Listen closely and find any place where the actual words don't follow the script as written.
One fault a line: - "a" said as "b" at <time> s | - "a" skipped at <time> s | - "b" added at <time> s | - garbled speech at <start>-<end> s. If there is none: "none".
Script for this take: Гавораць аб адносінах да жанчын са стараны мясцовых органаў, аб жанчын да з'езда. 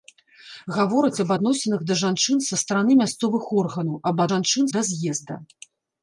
none